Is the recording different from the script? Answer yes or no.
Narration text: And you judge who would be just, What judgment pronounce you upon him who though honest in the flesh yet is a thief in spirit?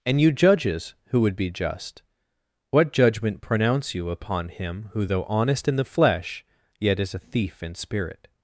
yes